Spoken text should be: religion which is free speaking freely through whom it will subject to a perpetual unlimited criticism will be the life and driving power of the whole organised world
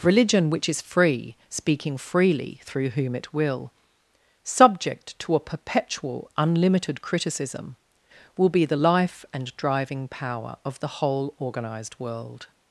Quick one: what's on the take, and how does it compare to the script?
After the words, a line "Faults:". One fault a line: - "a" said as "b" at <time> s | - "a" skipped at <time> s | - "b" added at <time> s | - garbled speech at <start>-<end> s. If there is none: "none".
religion which is free speaking freely through whom it will subject to a perpetual unlimited criticism will be the life and driving power of the whole organised world
Faults:
none